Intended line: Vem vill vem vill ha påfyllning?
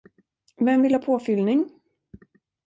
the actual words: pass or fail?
fail